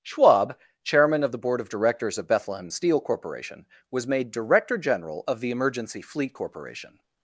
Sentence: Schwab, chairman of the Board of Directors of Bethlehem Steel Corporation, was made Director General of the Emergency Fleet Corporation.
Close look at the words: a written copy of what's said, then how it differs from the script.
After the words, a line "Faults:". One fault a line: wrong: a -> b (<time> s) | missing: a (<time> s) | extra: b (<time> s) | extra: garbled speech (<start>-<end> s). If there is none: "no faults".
Schwab, chairman of the Board of Directors of Bethlehem Steel Corporation, was made Director General of the Emergency Fleet Corporation.
Faults:
no faults